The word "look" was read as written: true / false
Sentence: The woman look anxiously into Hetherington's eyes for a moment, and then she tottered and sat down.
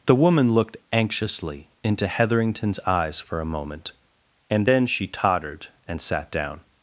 false